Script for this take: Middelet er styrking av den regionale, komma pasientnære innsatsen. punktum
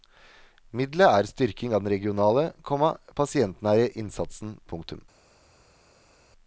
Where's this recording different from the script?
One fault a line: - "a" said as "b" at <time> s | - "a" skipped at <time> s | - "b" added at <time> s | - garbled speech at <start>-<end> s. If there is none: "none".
none